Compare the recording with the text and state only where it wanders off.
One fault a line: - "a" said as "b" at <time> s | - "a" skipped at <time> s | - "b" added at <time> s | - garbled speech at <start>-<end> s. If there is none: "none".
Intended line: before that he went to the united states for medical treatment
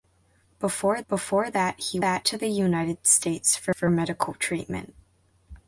- "before" added at 1.1 s
- "went" said as "that" at 2.0 s
- "for" added at 3.7 s